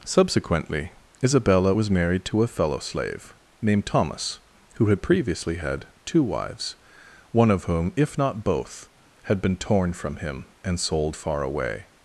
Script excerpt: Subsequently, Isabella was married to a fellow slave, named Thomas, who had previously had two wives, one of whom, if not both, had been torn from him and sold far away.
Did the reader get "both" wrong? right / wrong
right